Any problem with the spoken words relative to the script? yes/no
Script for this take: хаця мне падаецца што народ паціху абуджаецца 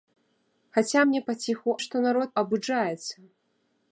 yes